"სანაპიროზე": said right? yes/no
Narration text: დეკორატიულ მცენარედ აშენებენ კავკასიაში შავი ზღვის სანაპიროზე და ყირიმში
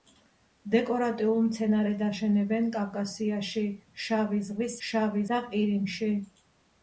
no